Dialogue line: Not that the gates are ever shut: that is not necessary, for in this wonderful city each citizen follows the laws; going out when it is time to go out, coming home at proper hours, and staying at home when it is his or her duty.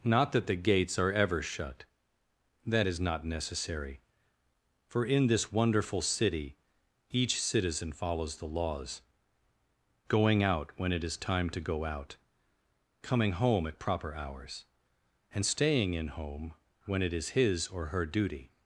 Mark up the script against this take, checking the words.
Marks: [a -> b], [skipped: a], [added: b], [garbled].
Not that the gates are ever shut: that is not necessary, for in this wonderful city each citizen follows the laws; going out when it is time to go out, coming home at proper hours, and staying [at -> in] home when it is his or her duty.